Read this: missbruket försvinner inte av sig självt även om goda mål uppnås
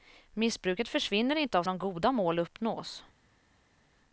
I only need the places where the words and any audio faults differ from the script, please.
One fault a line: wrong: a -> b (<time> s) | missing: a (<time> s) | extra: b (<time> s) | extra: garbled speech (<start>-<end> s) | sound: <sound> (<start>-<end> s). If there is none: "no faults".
missing: sig självt även (1.6 s)